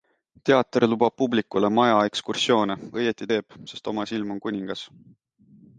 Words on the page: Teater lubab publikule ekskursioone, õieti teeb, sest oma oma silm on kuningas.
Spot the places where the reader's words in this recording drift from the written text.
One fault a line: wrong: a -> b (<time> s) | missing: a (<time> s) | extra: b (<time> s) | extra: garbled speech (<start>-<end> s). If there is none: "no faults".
extra: maja (1.8 s)
missing: oma (4.1 s)